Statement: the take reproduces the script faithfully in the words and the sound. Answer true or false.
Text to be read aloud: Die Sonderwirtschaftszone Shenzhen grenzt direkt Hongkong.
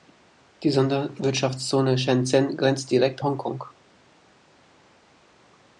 true